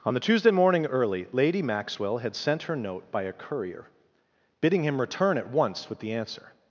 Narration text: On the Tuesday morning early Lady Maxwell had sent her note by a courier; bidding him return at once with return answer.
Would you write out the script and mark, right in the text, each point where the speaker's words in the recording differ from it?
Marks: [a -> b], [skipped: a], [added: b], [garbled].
On the Tuesday morning early Lady Maxwell had sent her note by a courier; bidding him return at once with [return -> the] answer.